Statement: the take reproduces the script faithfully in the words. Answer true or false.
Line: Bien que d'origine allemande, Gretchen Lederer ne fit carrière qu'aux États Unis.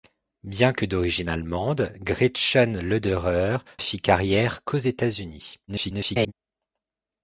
false